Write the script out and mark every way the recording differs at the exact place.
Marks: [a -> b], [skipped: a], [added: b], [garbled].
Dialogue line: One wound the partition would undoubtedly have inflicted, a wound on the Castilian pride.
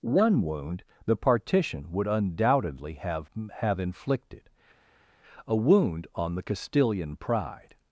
One wound the partition would undoubtedly have [added: have] inflicted, a wound on the Castilian pride.